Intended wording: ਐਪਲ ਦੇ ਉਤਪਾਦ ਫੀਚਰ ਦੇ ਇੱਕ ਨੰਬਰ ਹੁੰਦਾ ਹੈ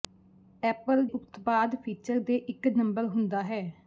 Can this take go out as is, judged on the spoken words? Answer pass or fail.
fail